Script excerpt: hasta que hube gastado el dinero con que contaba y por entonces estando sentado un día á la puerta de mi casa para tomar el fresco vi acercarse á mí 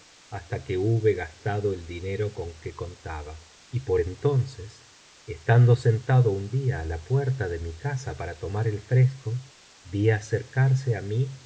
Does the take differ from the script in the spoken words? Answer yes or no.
no